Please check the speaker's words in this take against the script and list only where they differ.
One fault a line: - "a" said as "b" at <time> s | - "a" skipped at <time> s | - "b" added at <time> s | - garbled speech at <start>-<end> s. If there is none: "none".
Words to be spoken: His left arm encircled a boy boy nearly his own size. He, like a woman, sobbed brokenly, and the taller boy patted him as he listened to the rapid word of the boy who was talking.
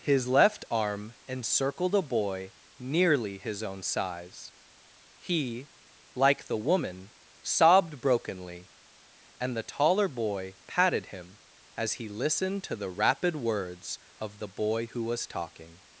- "boy" skipped at 2.5 s
- "a" said as "the" at 6.5 s
- "word" said as "words" at 13.3 s